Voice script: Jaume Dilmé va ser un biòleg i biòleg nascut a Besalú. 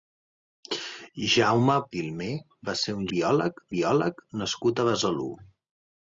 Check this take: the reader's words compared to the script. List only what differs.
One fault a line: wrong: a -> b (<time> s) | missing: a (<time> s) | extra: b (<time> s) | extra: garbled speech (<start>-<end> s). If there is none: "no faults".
no faults